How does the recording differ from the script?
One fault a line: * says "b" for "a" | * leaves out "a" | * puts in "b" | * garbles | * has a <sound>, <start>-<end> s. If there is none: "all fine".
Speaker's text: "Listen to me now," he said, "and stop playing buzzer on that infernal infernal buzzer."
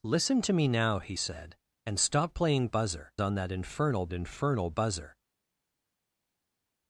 all fine